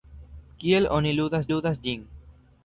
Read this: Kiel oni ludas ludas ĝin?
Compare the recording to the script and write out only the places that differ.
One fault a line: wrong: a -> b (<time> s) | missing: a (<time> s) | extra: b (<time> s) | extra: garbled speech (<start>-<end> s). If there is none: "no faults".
no faults